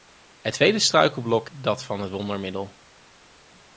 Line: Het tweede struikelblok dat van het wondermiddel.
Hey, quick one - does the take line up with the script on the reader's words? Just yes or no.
yes